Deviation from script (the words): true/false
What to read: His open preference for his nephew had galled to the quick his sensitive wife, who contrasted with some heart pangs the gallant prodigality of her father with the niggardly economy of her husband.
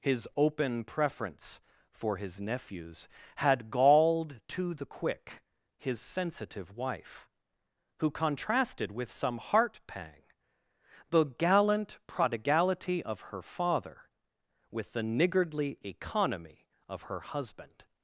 true